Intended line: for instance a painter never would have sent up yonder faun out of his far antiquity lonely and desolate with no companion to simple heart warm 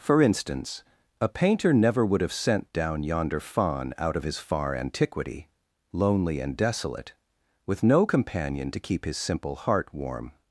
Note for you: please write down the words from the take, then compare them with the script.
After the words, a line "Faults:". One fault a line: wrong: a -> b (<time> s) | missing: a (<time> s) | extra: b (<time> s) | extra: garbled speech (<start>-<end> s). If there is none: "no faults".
for instance a painter never would have sent down yonder faun out of his far antiquity lonely and desolate with no companion to keep his simple heart warm
Faults:
wrong: up -> down (2.7 s)
extra: keep his (8.8 s)